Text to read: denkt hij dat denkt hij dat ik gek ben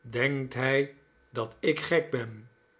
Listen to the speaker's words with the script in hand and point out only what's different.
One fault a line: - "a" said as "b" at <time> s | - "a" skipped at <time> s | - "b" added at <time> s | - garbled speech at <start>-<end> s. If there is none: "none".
- "denkt hij dat" skipped at 1.6 s